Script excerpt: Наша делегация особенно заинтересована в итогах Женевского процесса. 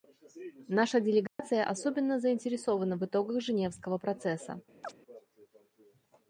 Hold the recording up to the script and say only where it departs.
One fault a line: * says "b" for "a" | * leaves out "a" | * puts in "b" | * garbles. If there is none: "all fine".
all fine